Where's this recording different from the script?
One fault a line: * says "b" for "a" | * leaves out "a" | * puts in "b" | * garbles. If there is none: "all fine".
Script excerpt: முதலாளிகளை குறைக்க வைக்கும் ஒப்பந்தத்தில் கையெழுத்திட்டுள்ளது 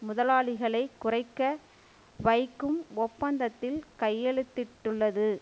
all fine